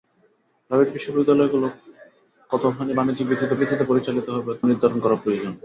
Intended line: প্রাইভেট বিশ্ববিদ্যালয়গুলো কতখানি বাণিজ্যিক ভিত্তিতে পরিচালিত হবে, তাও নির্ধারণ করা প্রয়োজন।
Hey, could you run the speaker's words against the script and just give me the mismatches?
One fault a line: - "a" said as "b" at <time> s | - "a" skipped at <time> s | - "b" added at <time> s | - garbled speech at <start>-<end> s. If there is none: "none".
- "ভিত্তিতে" added at 3.6 s
- "তাও" skipped at 4.5 s